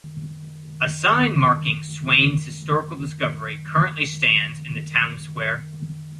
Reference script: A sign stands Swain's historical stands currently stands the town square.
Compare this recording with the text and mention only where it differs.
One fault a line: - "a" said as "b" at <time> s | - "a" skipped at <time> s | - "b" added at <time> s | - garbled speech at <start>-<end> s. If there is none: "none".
- "stands" said as "marking" at 1.4 s
- "stands" said as "discovery" at 3.0 s
- "in" added at 4.6 s